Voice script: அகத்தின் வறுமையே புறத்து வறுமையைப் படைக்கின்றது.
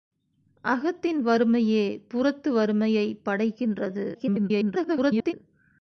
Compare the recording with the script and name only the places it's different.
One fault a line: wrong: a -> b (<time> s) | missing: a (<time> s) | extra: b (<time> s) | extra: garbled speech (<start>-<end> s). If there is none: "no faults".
extra: garbled speech (4.1-5.3 s)